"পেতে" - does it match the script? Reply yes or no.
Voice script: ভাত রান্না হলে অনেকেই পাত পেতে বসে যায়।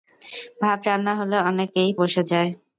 no